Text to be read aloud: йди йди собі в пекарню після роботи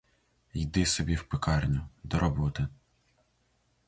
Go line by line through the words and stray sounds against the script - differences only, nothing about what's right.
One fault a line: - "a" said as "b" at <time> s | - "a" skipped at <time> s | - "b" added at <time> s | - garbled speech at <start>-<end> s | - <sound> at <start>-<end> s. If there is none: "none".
- "йди" skipped at 0.8 s
- "після" said as "до" at 2.0 s